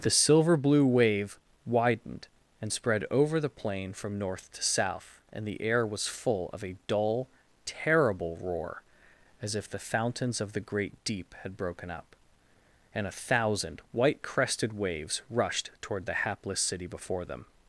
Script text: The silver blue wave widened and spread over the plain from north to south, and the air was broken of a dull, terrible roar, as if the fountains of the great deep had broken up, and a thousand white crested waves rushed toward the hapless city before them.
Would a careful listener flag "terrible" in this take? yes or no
no